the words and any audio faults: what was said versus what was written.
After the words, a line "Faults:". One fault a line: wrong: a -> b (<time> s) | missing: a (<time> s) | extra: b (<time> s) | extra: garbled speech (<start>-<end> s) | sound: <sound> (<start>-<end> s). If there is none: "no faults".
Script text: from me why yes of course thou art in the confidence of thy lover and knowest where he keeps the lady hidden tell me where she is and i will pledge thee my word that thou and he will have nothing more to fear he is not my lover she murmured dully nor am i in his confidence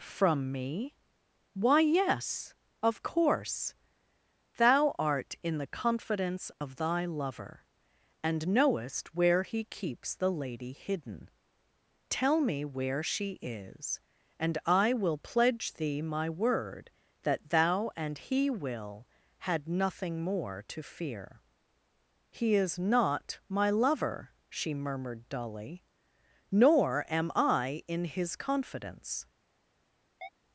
from me why yes of course thou art in the confidence of thy lover and knowest where he keeps the lady hidden tell me where she is and i will pledge thee my word that thou and he will had nothing more to fear he is not my lover she murmured dully nor am i in his confidence
Faults:
sound: dropout (6.5-6.6 s)
wrong: have -> had (19.4 s)
sound: chirp (30.2-30.3 s)